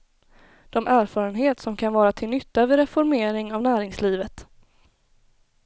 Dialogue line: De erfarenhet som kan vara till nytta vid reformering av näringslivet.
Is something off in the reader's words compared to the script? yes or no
no